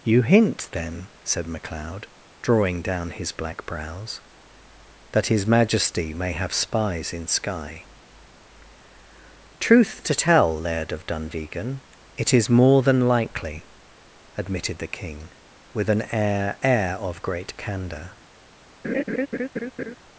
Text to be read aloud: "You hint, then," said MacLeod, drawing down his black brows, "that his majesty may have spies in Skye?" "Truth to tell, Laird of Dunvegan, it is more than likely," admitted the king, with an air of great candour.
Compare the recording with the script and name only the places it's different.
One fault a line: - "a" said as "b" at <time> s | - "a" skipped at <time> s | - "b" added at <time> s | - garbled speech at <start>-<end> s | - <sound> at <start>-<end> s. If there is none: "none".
- "air" added at 16.6 s
- laugh at 18.8-20.0 s